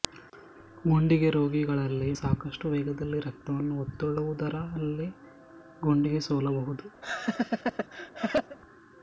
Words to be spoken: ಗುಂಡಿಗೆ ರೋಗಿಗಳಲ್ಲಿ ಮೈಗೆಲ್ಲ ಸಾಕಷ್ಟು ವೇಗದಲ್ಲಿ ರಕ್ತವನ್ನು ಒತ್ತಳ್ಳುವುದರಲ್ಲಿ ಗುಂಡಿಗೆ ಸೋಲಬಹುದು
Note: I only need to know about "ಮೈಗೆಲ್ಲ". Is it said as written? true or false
false